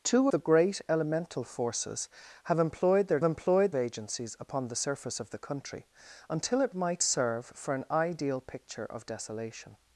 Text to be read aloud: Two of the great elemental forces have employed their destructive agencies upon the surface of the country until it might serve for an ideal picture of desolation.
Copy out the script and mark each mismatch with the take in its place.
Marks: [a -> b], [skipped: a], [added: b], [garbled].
Two [skipped: of] the great elemental forces have employed their [destructive -> employed] agencies upon the surface of the country until it might serve for an ideal picture of desolation.